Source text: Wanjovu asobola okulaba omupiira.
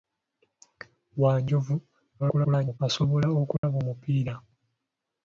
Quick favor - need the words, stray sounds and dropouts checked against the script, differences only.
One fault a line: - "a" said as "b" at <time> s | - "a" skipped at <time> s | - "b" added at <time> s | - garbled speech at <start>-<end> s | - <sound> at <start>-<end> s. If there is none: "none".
- garbled speech at 2.2-2.8 s
- dropout at 3.6-3.6 s